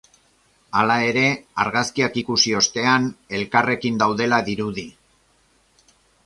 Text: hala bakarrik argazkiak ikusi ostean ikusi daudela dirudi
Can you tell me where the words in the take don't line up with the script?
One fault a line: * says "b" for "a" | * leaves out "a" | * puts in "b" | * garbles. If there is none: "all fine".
* says "ere" for "bakarrik"
* says "elkarrekin" for "ikusi"